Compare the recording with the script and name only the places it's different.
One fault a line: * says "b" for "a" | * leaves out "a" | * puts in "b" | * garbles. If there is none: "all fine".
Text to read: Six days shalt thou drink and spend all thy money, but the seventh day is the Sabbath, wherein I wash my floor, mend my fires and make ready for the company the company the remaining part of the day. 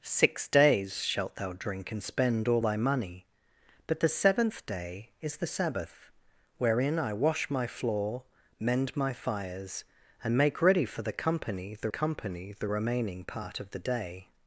all fine